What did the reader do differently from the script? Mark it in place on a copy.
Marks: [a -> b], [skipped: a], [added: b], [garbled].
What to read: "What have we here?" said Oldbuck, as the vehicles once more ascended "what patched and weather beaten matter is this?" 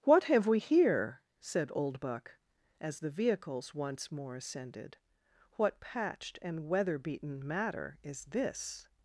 "What have we here?" said Oldbuck, as the vehicles once more ascended "what patched and weather beaten matter is this?"